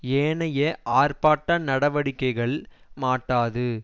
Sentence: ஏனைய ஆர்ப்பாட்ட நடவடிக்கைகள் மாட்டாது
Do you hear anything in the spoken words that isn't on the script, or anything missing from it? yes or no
no